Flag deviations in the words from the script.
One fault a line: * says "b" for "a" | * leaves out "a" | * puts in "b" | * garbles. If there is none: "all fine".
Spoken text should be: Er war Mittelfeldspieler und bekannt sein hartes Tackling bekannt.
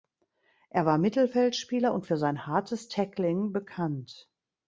* says "für" for "bekannt"